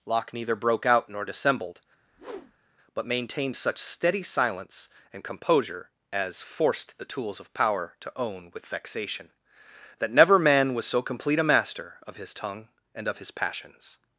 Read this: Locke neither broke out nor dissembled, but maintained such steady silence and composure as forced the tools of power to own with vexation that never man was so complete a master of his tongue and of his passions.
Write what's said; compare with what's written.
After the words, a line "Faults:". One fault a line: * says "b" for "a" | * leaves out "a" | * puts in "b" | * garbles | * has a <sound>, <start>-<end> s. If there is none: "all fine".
Locke neither broke out nor dissembled, but maintained such steady silence and composure as forced the tools of power to own with vexation that never man was so complete a master of his tongue and of his passions.
Faults:
* has a whoosh, 2.0-2.8 s